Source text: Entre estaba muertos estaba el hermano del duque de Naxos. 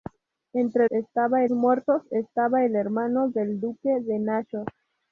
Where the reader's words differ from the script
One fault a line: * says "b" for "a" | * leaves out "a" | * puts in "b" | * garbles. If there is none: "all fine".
all fine